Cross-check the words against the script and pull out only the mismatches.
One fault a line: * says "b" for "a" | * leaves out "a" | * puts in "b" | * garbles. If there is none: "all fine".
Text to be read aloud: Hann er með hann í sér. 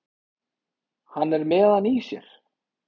all fine